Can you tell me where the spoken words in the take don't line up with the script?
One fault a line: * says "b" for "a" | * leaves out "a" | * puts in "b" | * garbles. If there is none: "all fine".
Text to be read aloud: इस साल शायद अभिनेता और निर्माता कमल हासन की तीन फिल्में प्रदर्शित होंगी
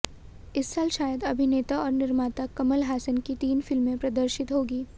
all fine